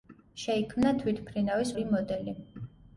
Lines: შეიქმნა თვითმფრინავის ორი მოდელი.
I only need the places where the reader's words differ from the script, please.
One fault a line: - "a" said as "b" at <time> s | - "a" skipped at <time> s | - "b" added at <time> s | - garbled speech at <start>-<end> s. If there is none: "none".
none